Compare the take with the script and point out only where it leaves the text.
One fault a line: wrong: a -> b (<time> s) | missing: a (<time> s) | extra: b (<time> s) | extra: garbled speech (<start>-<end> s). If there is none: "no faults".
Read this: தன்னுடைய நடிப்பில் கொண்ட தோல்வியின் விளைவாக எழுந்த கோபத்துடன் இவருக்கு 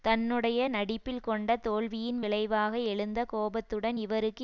no faults